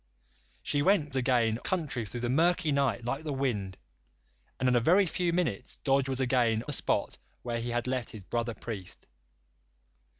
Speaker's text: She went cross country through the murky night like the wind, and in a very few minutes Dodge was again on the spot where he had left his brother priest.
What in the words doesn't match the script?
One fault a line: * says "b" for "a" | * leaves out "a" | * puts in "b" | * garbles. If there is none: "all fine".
* says "again" for "cross"
* leaves out "on"